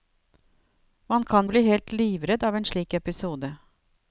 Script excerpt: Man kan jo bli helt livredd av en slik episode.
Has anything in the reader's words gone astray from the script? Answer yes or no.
yes